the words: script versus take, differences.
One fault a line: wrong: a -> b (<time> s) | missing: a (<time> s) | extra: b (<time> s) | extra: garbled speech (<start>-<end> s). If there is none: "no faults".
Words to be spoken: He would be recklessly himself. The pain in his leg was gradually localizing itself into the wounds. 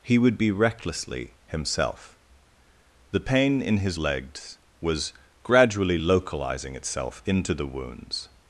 wrong: leg -> legs (4.0 s)